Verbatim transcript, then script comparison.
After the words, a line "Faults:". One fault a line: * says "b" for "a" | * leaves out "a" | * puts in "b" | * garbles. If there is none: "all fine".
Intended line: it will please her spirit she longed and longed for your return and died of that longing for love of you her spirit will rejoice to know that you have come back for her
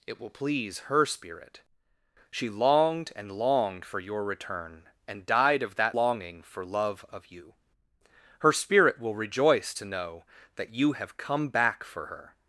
it will please her spirit she longed and longed for your return and died of that longing for love of you her spirit will rejoice to know that you have come back for her
Faults:
all fine